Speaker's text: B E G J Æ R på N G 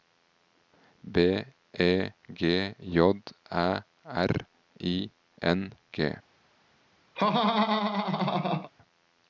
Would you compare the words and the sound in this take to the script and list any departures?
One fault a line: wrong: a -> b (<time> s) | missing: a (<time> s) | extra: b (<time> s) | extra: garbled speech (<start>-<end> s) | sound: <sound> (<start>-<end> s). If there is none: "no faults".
wrong: på -> I (4.8 s)
sound: laugh (7.2-8.7 s)